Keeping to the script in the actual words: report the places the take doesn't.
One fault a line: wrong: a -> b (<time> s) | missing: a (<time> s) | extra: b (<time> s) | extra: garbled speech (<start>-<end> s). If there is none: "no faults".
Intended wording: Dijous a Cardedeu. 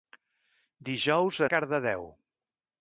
no faults